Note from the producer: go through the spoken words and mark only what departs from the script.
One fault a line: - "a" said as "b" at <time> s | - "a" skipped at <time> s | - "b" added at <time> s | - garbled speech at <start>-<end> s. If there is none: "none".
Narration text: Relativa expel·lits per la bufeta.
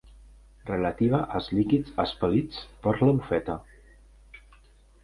- "als líquids" added at 1.4 s